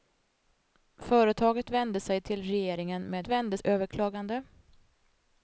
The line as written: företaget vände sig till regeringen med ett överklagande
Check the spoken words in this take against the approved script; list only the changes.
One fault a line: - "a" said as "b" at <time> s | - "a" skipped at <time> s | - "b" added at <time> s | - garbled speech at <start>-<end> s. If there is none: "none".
- "ett" said as "vände" at 3.3 s